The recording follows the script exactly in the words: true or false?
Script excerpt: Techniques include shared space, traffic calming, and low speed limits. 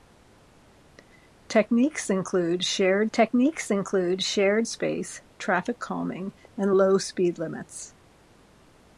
false